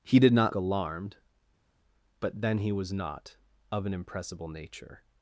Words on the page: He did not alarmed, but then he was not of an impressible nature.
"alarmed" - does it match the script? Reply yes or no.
yes